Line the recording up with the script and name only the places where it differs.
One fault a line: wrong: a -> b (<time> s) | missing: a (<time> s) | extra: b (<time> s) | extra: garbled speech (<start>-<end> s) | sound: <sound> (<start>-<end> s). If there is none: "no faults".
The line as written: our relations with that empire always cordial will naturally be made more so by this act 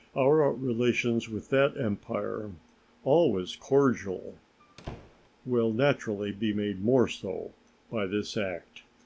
sound: squeak (4.6-5.3 s)